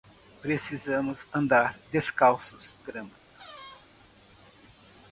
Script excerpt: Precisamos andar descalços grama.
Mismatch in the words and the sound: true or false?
true